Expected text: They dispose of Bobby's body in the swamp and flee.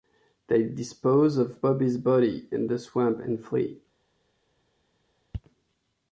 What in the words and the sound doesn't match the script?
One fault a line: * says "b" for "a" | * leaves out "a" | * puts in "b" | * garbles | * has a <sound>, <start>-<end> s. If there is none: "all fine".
all fine